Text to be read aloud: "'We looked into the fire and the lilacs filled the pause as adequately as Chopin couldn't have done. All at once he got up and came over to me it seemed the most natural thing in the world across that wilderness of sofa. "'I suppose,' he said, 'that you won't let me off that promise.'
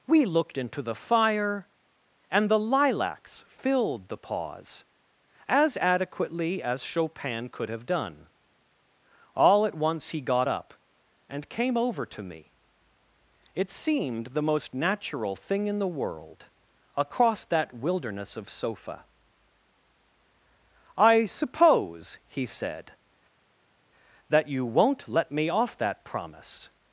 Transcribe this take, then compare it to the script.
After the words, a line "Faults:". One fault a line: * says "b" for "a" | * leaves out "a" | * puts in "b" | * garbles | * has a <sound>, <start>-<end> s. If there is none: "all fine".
"'We looked into the fire and the lilacs filled the pause as adequately as Chopin could have done. All at once he got up and came over to me it seemed the most natural thing in the world across that wilderness of sofa. "'I suppose,' he said, 'that you won't let me off that promise.'
Faults:
* says "could" for "couldn't"